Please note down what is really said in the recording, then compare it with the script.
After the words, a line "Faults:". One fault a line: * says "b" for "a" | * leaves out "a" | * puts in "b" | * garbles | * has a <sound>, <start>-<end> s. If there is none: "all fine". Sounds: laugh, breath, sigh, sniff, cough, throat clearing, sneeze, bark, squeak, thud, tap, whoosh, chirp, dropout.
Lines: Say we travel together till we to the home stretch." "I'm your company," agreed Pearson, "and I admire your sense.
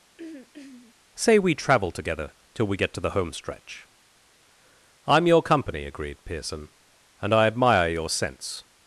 Say we travel together till we get to the home stretch." "I'm your company," agreed Pearson, "and I admire your sense.
Faults:
* has a throat clearing, 0.2-1.0 s
* puts in "get"